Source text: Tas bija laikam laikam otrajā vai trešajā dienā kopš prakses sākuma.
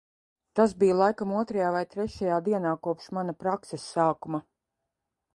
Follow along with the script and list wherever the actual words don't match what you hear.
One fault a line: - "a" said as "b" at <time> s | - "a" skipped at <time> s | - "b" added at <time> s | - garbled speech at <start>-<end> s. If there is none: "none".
- "laikam" skipped at 1.3 s
- "mana" added at 3.2 s